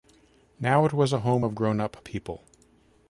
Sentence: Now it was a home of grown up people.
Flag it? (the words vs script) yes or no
no